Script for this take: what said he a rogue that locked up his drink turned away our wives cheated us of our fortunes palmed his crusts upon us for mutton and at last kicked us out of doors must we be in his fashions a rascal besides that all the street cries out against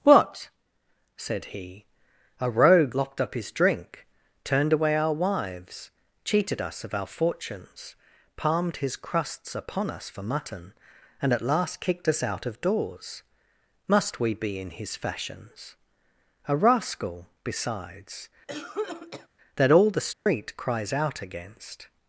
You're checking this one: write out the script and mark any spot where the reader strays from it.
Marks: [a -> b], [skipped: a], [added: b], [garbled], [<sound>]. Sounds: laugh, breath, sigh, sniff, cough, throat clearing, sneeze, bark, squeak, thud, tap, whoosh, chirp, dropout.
what said he a rogue [skipped: that] locked up his drink turned away our wives cheated us of our fortunes palmed his crusts upon us for mutton and at last kicked us out of doors must we be in his fashions a rascal besides [cough] that all the street [dropout] cries out against